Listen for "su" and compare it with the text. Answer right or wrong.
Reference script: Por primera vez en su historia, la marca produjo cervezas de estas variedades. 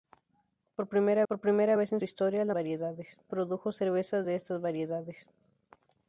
wrong